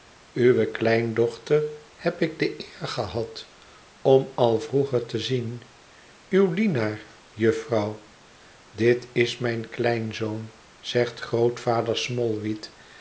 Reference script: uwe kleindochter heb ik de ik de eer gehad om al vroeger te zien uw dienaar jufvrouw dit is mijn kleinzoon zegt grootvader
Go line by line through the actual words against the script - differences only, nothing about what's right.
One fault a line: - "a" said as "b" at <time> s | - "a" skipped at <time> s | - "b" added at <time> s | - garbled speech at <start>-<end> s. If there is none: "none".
- "ik de" skipped at 2.6 s